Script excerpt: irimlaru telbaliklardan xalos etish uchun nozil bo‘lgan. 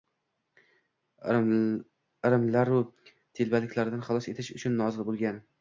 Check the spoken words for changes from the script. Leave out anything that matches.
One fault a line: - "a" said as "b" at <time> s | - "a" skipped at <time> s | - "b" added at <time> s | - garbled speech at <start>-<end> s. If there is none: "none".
none